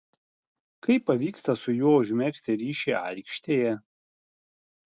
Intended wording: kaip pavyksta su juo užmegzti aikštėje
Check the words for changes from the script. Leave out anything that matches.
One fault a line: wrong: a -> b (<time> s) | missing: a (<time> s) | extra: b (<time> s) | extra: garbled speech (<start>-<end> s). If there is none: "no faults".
extra: ryšį (2.6 s)